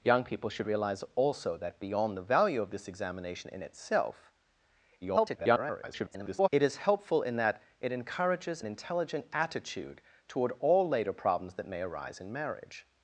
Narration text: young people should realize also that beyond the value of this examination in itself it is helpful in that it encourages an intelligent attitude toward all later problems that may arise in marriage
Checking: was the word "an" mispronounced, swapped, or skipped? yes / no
yes